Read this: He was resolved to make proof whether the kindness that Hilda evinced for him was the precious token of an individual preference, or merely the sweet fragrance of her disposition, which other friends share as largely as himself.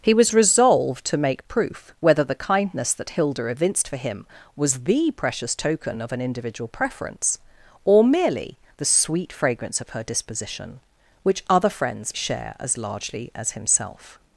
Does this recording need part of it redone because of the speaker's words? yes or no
no